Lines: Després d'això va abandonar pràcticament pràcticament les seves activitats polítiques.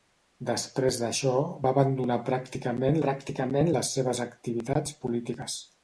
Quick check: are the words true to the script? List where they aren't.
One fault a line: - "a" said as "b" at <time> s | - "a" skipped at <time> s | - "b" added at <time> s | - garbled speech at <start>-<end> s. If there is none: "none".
none